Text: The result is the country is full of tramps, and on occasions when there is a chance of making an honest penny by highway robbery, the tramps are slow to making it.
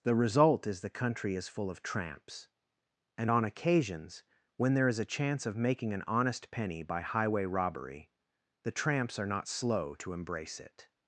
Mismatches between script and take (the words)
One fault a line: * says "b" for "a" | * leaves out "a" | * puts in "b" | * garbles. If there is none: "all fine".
* puts in "not"
* says "embrace" for "making"